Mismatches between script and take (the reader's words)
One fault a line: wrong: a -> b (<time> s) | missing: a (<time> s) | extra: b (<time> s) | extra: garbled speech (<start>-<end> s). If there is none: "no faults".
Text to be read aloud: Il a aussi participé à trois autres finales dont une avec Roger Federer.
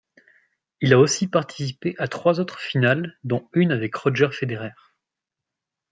no faults